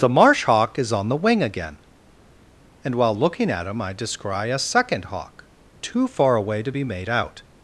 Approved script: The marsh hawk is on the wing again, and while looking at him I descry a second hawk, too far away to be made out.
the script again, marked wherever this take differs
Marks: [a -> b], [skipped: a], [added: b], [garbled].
The marsh hawk is on the wing again, and while looking at him I descry a second hawk, too far away to be made out.